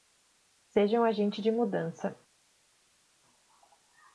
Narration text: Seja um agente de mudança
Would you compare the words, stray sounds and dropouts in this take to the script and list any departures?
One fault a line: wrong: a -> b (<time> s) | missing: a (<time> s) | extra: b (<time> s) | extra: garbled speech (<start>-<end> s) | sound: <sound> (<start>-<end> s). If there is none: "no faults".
no faults